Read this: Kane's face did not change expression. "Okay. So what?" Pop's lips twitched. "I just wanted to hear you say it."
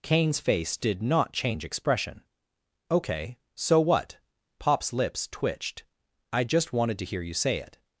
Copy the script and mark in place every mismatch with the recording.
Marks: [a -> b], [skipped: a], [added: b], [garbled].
Kane's face did not change expression. "Okay. So what?" Pop's lips twitched. "I just wanted to hear you say it."